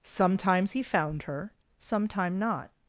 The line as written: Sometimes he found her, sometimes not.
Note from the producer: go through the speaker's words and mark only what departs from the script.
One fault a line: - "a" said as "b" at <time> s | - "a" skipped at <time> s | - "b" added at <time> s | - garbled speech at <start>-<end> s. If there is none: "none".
- "sometimes" said as "sometime" at 1.8 s